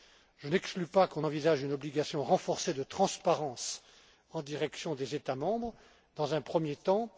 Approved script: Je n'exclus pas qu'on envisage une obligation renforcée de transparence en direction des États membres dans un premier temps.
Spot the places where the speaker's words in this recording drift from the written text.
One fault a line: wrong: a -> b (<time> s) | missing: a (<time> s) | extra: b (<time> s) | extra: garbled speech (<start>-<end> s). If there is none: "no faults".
no faults